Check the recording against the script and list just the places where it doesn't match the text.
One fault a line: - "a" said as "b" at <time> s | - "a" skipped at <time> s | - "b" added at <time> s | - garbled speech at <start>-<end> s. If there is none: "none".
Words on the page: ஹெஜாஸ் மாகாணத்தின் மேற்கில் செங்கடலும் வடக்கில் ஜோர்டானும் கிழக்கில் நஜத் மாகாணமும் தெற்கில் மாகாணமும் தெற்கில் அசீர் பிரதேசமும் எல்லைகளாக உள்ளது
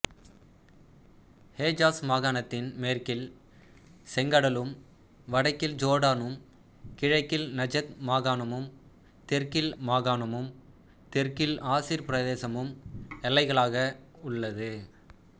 none